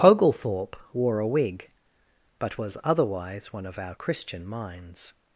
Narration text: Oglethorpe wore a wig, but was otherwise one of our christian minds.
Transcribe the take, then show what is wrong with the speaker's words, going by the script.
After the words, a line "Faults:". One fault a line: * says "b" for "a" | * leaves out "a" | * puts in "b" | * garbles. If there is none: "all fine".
Oglethorpe wore a wig, but was otherwise one of our christian minds.
Faults:
all fine